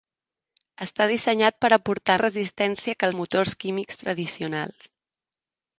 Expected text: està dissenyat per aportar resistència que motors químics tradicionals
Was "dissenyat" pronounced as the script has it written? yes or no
yes